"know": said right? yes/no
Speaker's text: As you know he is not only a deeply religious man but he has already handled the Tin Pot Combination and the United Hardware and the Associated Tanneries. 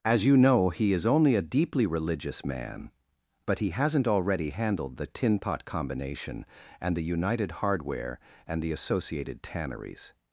yes